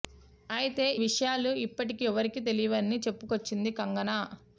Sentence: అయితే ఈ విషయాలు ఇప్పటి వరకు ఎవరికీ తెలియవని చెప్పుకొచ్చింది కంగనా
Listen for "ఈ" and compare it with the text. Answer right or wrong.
wrong